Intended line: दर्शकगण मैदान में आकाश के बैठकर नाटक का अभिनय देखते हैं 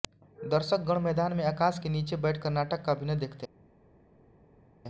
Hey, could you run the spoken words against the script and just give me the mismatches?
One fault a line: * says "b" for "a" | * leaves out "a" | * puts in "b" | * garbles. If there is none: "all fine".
* puts in "नीचे"